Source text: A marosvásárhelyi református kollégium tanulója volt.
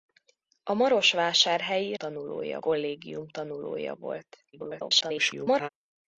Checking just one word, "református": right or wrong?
wrong